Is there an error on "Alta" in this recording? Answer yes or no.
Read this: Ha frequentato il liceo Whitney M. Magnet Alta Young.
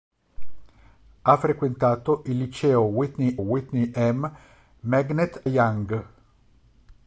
yes